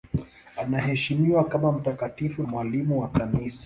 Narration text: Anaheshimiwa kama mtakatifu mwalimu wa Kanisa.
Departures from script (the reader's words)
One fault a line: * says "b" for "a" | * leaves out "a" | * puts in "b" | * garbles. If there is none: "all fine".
all fine